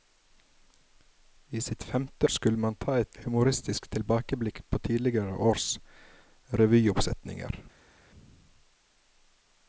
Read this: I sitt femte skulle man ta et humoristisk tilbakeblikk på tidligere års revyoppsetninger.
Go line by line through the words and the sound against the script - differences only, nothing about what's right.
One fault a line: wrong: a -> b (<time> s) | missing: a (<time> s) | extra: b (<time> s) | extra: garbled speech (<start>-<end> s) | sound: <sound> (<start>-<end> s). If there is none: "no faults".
no faults